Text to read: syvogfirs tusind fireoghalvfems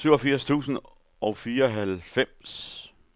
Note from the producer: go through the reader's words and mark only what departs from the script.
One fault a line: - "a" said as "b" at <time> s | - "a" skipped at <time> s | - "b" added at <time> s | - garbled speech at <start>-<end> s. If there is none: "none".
- "og" added at 1.2 s